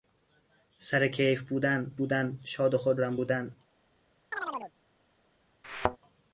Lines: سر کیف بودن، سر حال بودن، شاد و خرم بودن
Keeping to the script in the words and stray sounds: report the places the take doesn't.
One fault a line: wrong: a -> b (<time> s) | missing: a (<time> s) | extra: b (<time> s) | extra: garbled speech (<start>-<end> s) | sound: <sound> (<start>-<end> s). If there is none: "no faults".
missing: سر حال (1.9 s)
sound: chirp (4.3-4.7 s)
sound: thud (5.6-6.0 s)